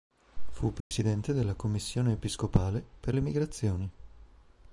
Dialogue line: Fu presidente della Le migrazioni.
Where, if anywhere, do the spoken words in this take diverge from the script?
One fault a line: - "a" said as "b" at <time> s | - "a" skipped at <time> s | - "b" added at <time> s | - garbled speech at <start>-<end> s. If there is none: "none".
- "Commissione episcopale per" added at 1.5 s